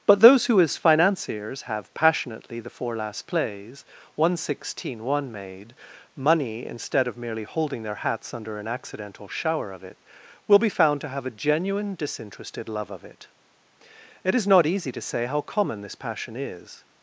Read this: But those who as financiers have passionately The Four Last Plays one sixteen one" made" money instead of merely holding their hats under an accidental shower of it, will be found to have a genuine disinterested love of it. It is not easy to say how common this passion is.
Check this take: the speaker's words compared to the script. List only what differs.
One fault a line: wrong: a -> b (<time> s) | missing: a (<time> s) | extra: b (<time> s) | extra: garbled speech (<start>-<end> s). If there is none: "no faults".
no faults